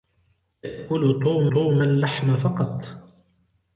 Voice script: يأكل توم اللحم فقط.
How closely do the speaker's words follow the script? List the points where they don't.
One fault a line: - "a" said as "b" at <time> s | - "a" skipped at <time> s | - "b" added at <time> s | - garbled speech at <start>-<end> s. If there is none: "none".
- "توم" added at 1.5 s